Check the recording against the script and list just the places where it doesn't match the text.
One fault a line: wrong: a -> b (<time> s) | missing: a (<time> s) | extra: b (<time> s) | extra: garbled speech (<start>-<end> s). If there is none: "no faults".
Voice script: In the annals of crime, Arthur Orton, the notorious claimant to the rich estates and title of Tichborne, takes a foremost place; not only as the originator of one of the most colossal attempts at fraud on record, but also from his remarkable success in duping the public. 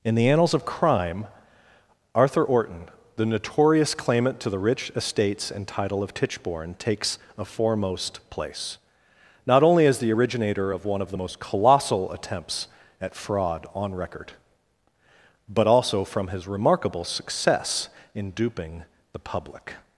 no faults